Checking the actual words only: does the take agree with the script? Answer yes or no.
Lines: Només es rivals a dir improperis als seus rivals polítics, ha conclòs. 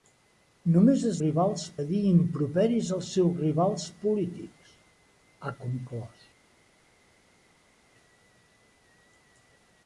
yes